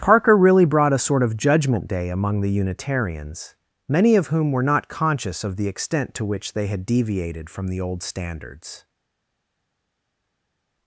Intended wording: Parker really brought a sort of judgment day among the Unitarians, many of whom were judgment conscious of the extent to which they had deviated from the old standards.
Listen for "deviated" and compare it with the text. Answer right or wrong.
right